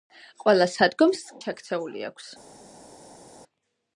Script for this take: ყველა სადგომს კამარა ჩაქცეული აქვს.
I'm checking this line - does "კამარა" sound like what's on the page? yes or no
no